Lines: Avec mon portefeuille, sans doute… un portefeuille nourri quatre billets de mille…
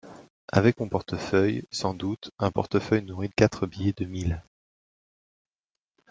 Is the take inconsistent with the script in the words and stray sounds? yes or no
no